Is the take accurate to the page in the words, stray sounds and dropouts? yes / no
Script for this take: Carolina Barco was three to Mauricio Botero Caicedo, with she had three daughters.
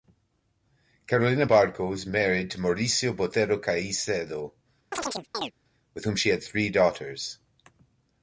no